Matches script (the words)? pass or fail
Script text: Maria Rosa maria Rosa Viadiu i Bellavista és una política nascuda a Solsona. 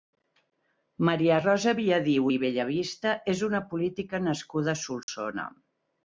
fail